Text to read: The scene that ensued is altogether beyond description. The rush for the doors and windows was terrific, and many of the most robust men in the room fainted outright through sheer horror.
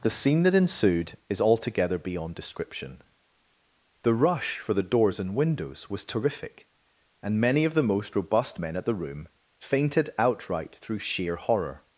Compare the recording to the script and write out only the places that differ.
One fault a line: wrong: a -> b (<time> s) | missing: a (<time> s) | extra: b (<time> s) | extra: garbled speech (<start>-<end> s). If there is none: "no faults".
wrong: in -> at (8.8 s)